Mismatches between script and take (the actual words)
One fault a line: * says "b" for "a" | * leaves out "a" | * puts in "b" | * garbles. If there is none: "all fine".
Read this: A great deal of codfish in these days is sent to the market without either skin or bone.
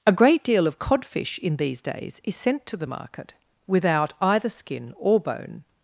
all fine